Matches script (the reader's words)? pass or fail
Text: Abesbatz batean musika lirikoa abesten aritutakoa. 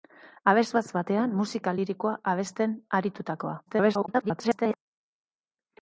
fail